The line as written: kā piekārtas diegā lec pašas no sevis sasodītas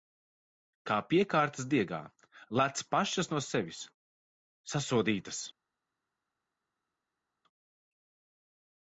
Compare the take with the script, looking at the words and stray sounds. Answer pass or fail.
pass